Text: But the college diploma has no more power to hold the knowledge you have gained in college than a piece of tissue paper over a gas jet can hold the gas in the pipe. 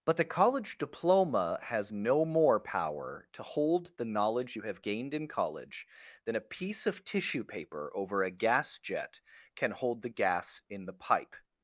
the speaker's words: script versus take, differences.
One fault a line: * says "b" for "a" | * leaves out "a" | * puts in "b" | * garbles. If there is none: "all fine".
all fine